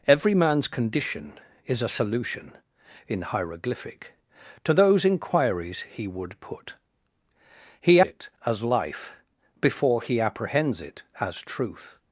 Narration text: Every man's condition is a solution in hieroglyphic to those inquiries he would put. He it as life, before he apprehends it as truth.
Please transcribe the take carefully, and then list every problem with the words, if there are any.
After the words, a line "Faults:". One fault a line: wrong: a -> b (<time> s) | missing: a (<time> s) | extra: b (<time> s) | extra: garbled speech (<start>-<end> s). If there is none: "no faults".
Every man's condition is a solution in hieroglyphic to those inquiries he would put. He it as life, before he apprehends it as truth.
Faults:
no faults